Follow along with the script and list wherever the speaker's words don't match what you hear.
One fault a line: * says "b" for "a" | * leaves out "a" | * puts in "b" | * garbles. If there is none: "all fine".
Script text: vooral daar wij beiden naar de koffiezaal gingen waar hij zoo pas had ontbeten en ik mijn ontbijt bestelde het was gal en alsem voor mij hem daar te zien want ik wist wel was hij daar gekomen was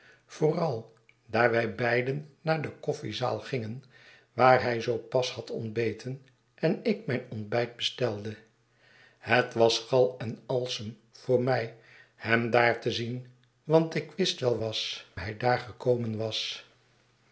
all fine